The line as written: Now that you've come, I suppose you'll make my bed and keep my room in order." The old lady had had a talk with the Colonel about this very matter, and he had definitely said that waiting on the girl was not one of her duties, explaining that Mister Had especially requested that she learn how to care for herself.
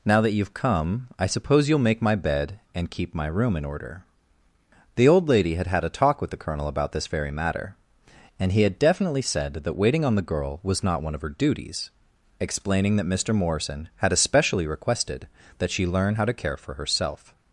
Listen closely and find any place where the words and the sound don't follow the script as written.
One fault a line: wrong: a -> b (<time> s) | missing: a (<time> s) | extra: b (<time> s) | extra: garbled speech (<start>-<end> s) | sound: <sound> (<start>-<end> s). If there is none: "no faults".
extra: Morrison (13.3 s)